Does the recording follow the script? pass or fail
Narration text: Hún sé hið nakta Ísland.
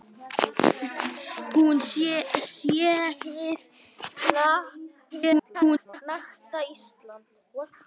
fail